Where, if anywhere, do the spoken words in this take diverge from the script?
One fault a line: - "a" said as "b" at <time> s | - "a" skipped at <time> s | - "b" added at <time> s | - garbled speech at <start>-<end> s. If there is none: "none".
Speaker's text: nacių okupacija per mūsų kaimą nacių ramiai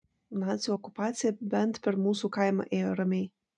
- "bent" added at 1.6 s
- "nacių" said as "ėjo" at 2.8 s